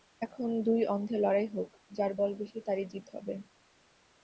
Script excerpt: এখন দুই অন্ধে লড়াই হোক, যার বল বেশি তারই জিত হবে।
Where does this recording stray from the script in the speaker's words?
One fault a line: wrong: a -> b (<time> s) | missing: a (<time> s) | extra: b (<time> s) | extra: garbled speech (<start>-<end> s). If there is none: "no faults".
no faults